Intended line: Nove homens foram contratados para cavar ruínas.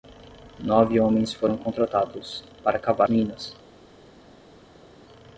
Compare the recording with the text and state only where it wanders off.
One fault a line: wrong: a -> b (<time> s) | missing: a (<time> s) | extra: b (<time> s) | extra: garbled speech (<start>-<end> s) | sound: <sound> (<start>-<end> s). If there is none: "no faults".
no faults